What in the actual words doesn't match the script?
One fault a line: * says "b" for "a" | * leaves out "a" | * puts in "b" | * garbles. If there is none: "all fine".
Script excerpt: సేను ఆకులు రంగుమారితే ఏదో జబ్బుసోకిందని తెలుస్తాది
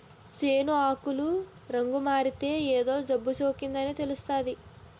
all fine